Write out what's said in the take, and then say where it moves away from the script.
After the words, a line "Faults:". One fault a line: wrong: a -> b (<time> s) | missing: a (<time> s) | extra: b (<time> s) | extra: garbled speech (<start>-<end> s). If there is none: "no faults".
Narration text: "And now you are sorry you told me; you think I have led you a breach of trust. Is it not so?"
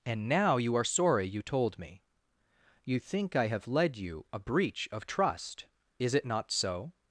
"And now you are sorry you told me; you think I have led you a breach of trust. Is it not so?"
Faults:
no faults